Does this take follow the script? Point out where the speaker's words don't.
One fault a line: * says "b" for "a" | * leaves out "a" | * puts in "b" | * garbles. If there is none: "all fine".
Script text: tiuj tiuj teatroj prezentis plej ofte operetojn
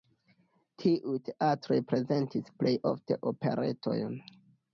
* leaves out "tiuj"